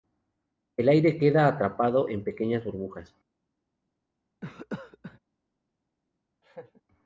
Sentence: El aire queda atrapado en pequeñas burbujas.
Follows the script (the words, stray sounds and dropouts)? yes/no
no